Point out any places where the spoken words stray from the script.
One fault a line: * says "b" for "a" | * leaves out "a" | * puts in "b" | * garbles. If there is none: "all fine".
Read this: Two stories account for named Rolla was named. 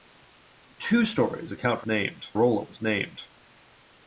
all fine